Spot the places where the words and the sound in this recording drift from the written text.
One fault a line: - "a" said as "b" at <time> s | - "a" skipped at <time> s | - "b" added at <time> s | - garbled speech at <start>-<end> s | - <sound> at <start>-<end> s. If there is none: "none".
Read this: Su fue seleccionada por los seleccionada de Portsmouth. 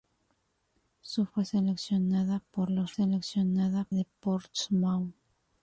none